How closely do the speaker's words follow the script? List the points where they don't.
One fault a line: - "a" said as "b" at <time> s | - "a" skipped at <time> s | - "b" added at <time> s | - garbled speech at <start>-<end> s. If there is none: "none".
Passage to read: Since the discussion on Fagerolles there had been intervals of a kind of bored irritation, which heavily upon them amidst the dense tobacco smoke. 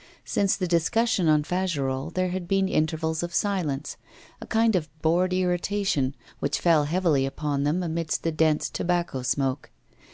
- "silence" added at 3.3 s
- "fell" added at 6.6 s